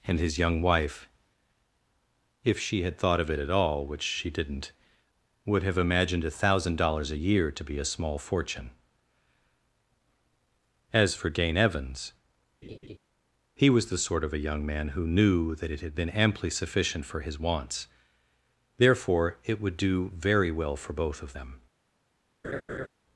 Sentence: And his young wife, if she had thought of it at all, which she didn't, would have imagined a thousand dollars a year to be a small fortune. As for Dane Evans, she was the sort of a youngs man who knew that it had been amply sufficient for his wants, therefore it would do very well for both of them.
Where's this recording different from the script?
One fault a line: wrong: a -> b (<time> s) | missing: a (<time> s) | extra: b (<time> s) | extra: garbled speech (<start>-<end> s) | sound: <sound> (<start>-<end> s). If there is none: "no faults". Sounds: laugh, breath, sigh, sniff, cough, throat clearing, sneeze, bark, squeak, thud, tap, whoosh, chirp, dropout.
sound: laugh (12.6-13.0 s)
wrong: she -> he (13.5 s)
wrong: youngs -> young (14.4 s)
sound: laugh (22.4-22.9 s)